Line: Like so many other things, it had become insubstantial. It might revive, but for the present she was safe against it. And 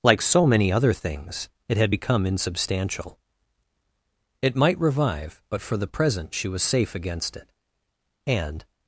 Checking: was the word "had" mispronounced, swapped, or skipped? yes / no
no